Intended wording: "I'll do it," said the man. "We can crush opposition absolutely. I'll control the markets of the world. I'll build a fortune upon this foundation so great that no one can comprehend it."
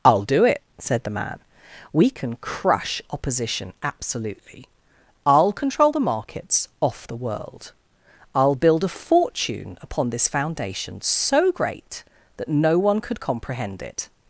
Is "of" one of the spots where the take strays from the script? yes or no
yes